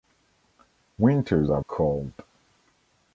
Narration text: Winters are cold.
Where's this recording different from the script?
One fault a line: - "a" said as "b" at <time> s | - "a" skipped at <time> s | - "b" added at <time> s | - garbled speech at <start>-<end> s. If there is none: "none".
none